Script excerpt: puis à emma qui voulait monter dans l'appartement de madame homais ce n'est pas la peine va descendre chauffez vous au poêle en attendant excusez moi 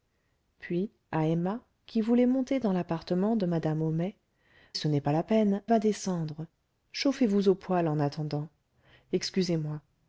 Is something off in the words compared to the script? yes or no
no